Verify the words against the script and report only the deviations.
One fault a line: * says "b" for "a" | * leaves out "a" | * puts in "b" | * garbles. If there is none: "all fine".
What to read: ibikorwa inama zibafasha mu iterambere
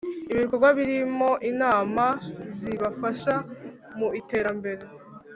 * puts in "birimo"